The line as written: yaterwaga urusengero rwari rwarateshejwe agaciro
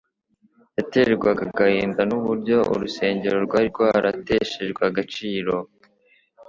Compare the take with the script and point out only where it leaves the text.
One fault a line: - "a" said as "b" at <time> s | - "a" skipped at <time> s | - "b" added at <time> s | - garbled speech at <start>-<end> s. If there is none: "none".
- "agahinda n'uburyo" added at 1.5 s